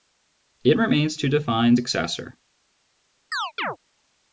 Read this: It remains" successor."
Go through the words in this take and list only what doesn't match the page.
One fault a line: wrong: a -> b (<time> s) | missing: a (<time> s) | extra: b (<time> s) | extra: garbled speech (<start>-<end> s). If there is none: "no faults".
extra: to define (1.2 s)